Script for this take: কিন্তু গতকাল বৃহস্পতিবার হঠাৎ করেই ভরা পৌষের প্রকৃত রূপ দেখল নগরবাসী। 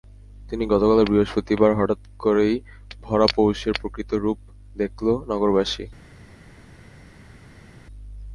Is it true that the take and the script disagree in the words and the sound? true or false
false